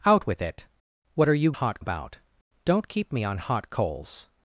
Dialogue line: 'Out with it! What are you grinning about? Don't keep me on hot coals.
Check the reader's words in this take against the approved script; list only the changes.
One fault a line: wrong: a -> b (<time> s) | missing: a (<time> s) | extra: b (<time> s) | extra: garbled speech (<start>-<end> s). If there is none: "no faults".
wrong: grinning -> hot (1.5 s)